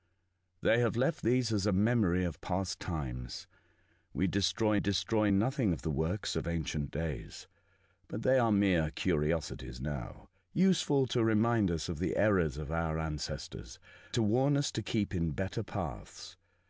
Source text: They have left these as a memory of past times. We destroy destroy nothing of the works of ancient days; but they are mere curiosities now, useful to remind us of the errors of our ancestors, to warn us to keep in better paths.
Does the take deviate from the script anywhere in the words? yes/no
no